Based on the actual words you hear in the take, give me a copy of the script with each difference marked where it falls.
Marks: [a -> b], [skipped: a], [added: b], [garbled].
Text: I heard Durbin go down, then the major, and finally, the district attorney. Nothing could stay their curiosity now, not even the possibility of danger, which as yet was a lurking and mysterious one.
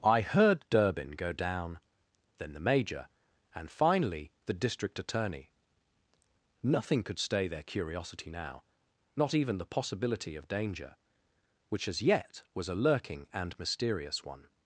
I heard Durbin go down, then the major, and finally, the district attorney. Nothing could stay their curiosity now, not even the possibility of danger, which as yet was a lurking and mysterious one.